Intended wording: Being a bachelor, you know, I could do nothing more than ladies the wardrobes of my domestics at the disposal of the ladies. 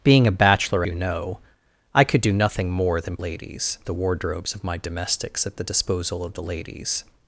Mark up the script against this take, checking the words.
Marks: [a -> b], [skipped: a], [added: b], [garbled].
Being a bachelor, you know, I could do nothing more than ladies the wardrobes of my domestics at the disposal of the ladies.